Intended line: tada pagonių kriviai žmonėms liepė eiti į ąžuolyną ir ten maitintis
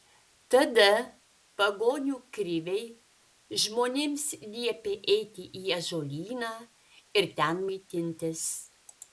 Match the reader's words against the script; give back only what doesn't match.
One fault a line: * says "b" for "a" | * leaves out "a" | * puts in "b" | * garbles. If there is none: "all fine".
all fine